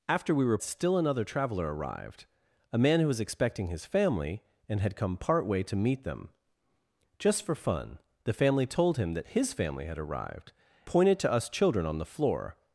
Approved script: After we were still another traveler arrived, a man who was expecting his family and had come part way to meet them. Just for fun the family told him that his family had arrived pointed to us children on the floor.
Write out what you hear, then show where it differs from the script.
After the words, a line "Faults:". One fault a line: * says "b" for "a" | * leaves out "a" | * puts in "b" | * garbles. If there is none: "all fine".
After we were still another traveler arrived, a man who was expecting his family and had come part way to meet them. Just for fun the family told him that his family had arrived pointed to us children on the floor.
Faults:
all fine